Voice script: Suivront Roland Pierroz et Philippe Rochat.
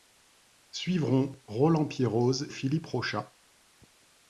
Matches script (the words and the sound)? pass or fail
fail